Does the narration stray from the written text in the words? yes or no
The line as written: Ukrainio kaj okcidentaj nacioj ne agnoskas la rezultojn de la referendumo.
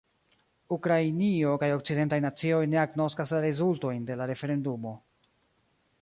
no